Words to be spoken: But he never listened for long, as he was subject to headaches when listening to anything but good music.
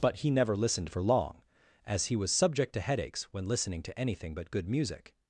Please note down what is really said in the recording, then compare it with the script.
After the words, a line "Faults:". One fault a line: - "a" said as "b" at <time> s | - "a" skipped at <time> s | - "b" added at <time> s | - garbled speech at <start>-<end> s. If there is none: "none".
But he never listened for long, as he was subject to headaches when listening to anything but good music.
Faults:
none